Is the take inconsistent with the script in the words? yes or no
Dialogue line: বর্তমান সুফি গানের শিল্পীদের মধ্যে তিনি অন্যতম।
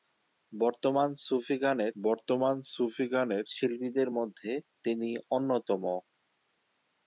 yes